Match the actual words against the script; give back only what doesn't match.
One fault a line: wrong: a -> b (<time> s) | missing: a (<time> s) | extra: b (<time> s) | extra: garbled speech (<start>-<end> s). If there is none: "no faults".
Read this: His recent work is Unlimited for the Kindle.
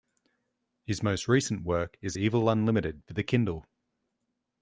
extra: most (1.0 s)
extra: Evil (2.1 s)